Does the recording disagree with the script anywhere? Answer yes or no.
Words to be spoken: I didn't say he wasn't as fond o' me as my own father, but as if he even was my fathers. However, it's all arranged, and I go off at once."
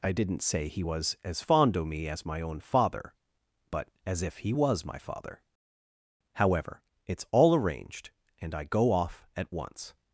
yes